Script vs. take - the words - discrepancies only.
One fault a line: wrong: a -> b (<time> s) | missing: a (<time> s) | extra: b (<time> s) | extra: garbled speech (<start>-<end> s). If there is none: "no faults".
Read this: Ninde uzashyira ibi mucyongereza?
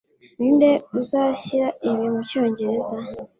no faults